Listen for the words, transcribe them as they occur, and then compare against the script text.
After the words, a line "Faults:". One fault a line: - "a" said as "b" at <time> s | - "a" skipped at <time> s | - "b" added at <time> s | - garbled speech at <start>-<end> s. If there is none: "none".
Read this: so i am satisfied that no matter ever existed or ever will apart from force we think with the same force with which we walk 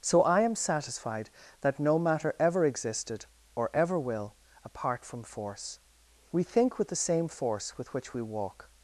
so i am satisfied that no matter ever existed or ever will apart from force we think with the same force with which we walk
Faults:
none